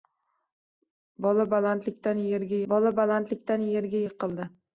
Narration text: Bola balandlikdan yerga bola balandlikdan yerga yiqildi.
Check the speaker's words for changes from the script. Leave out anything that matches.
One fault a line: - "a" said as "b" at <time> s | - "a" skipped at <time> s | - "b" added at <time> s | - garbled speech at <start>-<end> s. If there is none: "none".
none